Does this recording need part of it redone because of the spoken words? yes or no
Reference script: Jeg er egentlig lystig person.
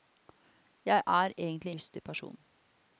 no